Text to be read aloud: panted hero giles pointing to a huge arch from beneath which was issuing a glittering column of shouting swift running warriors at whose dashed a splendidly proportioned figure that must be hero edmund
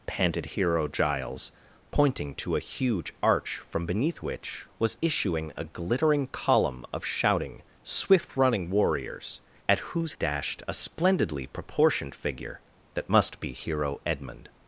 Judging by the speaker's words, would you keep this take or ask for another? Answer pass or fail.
pass